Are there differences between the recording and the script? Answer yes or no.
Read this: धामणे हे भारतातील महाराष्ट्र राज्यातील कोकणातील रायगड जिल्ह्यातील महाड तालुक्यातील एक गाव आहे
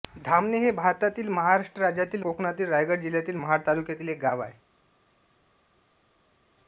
no